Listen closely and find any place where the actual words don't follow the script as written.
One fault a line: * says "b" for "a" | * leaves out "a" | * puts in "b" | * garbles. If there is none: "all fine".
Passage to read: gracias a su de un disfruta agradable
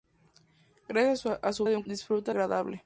all fine